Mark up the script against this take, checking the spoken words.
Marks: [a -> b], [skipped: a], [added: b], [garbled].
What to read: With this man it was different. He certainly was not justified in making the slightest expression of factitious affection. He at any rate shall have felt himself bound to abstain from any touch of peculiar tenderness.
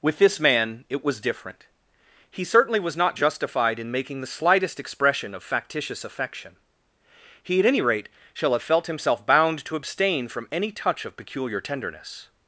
With this man it was different. He certainly was not justified in making the slightest expression of factitious affection. He at any rate shall have felt himself bound to abstain from any touch of peculiar tenderness.